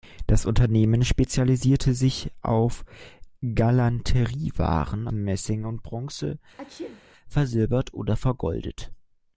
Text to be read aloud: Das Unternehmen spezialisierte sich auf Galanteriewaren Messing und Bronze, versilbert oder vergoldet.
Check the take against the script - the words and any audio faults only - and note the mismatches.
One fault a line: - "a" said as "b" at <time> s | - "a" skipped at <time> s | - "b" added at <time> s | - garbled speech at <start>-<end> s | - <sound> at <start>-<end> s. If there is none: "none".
- sneeze at 6.6-7.0 s